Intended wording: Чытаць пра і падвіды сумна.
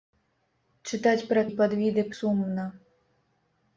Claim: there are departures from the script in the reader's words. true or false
false